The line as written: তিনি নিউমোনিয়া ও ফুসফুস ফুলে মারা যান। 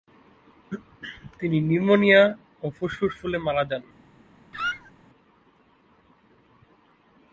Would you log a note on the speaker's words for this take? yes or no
no